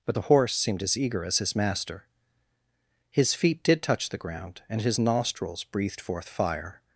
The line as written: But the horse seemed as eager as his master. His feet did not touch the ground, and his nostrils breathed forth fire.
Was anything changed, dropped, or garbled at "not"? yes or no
yes